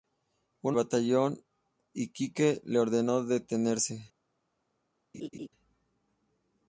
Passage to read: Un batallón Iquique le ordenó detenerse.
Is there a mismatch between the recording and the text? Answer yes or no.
no